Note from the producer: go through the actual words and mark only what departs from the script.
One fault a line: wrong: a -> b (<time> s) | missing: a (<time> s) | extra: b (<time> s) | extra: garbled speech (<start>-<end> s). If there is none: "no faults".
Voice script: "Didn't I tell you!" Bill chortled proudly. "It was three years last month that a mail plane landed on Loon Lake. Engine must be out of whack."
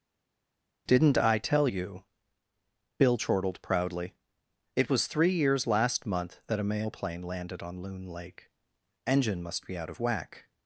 no faults